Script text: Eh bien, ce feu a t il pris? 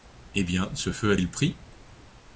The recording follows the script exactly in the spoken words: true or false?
false